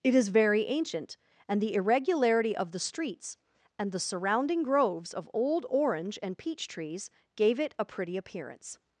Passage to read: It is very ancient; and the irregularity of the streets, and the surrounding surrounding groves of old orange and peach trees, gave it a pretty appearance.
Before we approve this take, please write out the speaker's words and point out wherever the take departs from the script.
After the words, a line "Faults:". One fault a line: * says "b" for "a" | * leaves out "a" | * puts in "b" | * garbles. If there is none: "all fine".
It is very ancient; and the irregularity of the streets, and the surrounding groves of old orange and peach trees, gave it a pretty appearance.
Faults:
* leaves out "surrounding"